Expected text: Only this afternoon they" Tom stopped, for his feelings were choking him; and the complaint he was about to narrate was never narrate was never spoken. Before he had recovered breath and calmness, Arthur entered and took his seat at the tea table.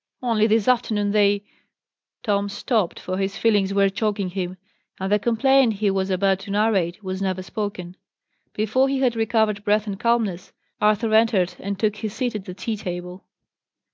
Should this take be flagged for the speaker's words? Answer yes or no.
yes